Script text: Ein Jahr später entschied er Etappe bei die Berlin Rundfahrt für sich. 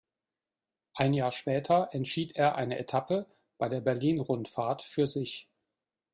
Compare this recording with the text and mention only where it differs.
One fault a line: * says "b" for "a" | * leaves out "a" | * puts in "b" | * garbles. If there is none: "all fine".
* puts in "eine"
* says "der" for "die"